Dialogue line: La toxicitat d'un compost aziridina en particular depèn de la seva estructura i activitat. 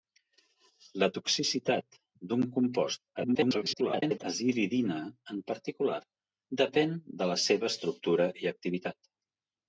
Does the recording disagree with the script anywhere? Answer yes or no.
yes